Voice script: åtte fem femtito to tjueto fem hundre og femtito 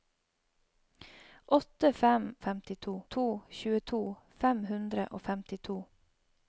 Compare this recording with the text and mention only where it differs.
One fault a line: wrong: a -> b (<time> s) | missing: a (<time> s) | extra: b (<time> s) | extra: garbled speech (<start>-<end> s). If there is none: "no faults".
no faults